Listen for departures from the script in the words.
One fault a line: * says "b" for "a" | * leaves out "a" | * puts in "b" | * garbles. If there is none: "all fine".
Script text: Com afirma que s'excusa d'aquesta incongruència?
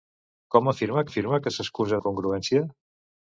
* puts in "afirma"
* leaves out "d'aquesta"